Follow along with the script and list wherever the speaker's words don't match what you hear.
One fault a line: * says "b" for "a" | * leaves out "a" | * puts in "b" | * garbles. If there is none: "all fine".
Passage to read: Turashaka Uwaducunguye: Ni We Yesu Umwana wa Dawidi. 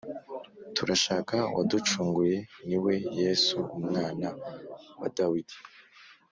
all fine